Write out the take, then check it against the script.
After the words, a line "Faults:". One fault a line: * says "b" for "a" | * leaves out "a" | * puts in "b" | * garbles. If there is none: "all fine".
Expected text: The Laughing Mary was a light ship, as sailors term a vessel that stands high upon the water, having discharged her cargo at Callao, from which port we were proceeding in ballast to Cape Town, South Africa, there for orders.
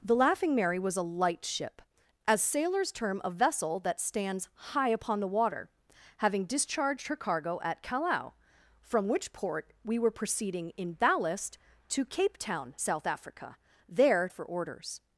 The Laughing Mary was a light ship, as sailors term a vessel that stands high upon the water, having discharged her cargo at Callao, from which port we were proceeding in ballast to Cape Town, South Africa, there for orders.
Faults:
all fine